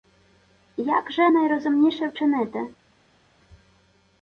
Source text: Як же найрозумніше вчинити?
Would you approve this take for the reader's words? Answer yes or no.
yes